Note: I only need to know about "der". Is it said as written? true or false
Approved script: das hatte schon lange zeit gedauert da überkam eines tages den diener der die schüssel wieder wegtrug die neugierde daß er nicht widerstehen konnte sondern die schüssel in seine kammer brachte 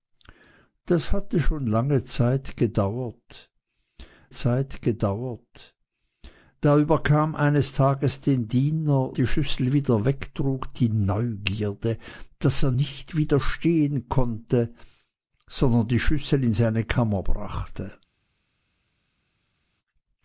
false